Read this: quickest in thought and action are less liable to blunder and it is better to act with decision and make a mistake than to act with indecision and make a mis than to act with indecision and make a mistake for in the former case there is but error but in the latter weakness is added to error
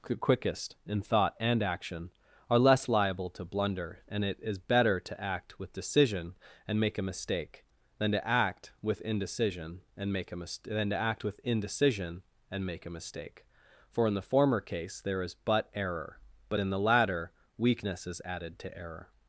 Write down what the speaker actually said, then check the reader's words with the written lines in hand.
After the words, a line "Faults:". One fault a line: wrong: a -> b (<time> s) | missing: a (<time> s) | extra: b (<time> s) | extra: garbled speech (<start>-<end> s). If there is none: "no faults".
quickest in thought and action are less liable to blunder and it is better to act with decision and make a mistake than to act with indecision and make a mis than to act with indecision and make a mistake for in the former case there is but error but in the latter weakness is added to error
Faults:
no faults